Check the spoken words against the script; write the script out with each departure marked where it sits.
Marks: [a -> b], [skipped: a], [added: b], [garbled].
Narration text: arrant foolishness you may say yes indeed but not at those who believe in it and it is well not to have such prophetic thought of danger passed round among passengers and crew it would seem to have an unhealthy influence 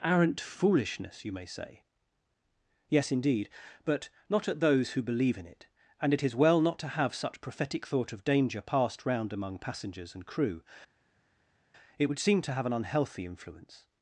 arrant foolishness you may say yes indeed but not at those who believe in it and it is well not to have such prophetic thought of danger passed round among passengers and crew it would seem to have an unhealthy influence